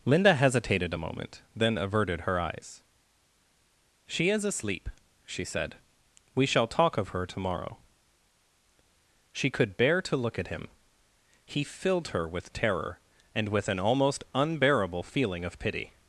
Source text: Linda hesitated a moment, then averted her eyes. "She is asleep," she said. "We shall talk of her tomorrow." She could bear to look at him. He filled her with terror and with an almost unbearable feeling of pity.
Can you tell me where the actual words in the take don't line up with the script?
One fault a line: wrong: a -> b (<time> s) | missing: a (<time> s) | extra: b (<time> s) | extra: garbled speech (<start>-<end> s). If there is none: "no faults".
no faults